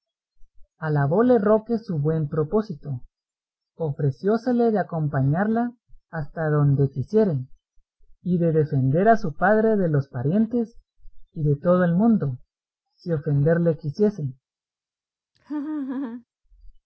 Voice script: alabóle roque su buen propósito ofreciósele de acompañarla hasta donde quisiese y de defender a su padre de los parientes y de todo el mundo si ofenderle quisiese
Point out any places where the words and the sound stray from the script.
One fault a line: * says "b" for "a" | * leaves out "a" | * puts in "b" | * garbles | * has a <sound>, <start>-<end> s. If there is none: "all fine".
* has a laugh, 15.4-16.3 s